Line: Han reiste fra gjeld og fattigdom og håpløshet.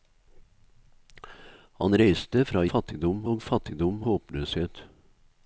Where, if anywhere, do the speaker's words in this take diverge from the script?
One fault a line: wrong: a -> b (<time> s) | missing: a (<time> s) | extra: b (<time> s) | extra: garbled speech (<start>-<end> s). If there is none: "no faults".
wrong: gjeld -> fattigdom (2.7 s)
missing: og (4.0 s)